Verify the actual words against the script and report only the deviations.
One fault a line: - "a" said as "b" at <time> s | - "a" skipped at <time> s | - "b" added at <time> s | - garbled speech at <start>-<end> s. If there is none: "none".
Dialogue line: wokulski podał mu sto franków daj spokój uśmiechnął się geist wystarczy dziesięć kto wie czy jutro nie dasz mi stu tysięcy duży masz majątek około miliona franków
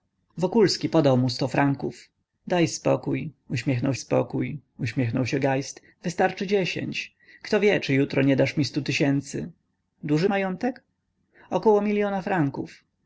- "spokój uśmiechnął" added at 3.9 s
- "masz" skipped at 10.3 s